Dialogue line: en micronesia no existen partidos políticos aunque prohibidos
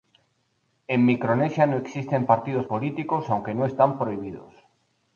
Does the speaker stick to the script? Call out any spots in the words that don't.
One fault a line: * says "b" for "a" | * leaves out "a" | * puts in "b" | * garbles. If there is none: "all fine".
* puts in "no están"